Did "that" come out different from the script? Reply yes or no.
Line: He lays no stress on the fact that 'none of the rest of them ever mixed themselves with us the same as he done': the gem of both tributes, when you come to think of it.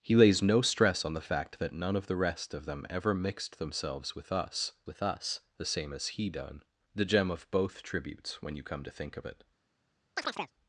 no